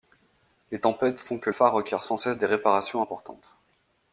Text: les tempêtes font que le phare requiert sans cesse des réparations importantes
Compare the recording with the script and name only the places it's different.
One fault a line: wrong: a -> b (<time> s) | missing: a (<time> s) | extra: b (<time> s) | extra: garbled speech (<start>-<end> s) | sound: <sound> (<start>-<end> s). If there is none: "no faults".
missing: le (1.5 s)